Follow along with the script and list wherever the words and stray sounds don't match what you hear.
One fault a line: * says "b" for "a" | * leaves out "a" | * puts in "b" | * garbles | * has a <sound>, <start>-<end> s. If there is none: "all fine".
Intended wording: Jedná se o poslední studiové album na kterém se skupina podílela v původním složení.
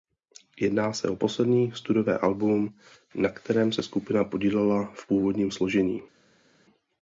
all fine